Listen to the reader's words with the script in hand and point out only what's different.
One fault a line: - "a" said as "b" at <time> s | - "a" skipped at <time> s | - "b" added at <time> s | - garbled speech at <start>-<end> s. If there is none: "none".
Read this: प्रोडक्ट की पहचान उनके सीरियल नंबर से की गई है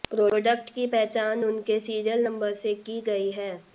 none